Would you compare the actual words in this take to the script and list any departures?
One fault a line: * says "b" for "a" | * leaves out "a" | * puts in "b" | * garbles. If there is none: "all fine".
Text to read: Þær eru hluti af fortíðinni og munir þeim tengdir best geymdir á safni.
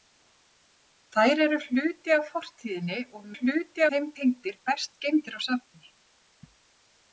* says "hluti" for "munir"